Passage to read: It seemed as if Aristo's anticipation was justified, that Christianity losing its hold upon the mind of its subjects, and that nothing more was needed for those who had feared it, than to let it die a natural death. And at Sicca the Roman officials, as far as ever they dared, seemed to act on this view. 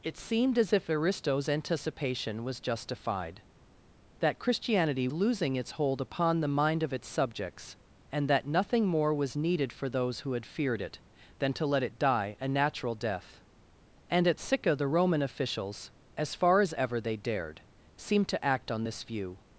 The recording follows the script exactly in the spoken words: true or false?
true